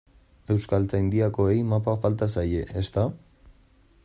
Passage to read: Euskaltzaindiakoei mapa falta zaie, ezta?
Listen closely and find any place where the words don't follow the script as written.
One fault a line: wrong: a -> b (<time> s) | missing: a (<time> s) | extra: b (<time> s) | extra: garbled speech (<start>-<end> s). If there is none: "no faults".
no faults